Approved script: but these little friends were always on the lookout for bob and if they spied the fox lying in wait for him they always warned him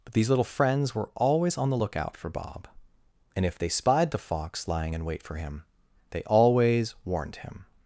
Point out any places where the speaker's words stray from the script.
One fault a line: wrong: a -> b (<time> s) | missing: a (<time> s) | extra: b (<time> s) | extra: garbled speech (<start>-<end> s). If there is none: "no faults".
no faults